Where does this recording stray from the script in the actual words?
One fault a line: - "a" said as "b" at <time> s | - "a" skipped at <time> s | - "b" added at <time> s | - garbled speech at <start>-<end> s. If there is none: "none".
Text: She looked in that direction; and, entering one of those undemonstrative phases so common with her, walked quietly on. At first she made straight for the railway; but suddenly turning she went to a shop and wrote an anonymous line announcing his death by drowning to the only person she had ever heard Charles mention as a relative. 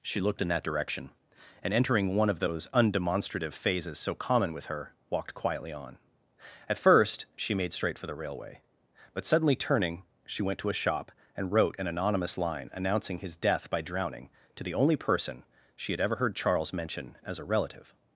none